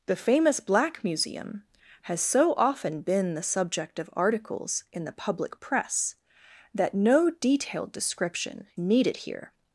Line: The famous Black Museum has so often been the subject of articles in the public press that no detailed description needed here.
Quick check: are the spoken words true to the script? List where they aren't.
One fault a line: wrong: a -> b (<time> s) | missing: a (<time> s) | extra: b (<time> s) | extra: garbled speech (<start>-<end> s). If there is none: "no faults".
no faults